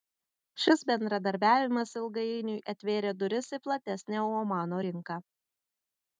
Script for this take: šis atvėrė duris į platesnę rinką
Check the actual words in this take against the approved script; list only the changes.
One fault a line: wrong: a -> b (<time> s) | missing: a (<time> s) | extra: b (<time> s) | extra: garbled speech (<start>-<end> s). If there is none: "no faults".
extra: bendradarbiavimas ilgainiui (0.9 s)
extra: omano (4.4 s)